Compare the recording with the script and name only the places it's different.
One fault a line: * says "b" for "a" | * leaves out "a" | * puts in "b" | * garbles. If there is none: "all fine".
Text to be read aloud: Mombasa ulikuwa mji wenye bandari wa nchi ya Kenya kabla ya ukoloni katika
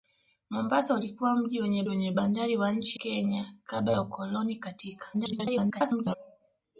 * puts in "wenye"
* leaves out "ya"
* garbles